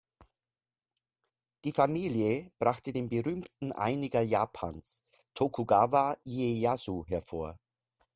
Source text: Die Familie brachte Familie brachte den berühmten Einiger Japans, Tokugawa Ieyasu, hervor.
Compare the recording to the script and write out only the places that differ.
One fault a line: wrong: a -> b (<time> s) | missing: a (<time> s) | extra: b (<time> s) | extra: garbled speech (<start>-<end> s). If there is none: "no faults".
missing: Familie brachte (2.9 s)